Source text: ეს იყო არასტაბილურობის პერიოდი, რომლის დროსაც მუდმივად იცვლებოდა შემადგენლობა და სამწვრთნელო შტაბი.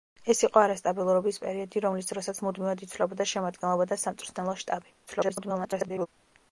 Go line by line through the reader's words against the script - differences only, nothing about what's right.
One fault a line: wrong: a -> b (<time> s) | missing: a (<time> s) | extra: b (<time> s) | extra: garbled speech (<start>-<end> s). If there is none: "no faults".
extra: garbled speech (5.1-6.1 s)